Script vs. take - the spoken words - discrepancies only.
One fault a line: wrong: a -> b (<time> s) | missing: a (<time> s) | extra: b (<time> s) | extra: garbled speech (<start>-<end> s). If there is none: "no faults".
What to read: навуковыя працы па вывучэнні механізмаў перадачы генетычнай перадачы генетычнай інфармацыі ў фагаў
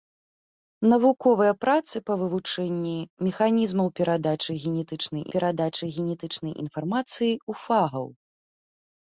no faults